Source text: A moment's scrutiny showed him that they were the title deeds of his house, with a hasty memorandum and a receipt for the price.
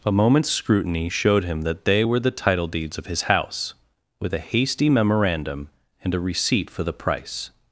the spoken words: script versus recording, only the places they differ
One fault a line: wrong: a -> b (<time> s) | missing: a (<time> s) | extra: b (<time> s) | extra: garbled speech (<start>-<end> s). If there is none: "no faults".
no faults